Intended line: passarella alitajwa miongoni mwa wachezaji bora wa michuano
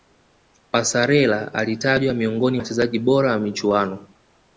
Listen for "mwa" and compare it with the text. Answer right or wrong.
wrong